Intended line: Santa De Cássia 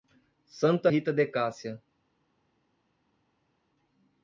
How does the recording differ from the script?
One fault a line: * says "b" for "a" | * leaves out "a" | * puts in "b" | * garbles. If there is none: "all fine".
* puts in "Rita"